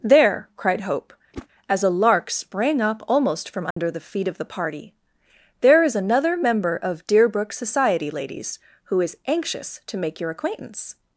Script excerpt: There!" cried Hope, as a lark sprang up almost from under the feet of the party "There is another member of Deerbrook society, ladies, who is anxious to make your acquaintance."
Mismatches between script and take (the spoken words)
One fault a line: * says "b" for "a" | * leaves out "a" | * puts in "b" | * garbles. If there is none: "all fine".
all fine